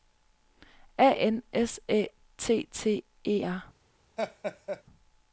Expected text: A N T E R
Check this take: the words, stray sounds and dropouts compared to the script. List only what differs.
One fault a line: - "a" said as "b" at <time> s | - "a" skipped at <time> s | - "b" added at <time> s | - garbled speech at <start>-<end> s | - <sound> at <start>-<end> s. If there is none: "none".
- "S Æ T" added at 1.5 s
- laugh at 4.2-4.8 s